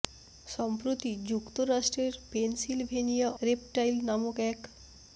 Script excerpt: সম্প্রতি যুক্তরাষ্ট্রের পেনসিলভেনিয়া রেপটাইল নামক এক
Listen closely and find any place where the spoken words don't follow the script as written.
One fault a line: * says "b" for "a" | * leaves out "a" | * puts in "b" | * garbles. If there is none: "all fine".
all fine